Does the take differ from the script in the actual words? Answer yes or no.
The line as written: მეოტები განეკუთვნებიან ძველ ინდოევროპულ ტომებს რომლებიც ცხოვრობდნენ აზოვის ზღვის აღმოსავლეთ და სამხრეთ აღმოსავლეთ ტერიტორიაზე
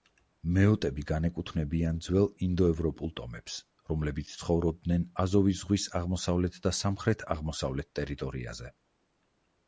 no